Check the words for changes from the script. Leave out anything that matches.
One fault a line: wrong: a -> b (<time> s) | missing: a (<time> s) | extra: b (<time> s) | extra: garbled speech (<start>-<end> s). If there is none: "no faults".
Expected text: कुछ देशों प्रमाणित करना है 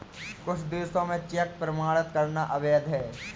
extra: में चेक (1.0 s)
extra: अवैध (2.5 s)